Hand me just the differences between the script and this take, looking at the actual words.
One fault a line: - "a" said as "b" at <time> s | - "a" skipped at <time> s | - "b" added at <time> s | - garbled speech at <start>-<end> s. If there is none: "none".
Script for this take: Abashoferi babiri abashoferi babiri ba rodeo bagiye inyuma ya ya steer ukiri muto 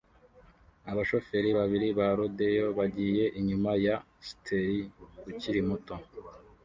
- "abashoferi babiri" skipped at 1.9 s
- "ya" skipped at 4.0 s